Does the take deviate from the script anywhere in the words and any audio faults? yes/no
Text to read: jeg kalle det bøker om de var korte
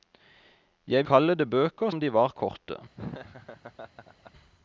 yes